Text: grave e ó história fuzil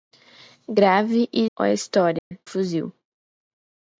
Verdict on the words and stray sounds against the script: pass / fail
fail